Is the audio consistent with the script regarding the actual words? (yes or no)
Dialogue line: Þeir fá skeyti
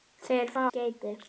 yes